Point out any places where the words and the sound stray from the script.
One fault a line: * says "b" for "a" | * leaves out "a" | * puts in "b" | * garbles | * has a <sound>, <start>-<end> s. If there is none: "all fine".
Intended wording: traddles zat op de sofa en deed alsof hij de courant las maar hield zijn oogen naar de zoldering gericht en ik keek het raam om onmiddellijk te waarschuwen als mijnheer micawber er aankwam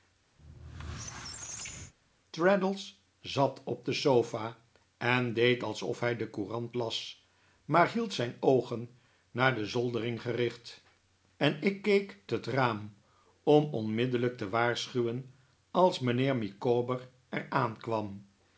* has a squeak, 0.4-1.9 s